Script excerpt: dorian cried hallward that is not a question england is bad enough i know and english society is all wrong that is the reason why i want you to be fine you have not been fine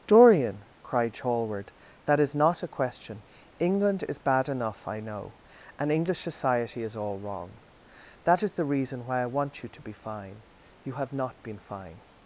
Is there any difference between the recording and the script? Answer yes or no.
no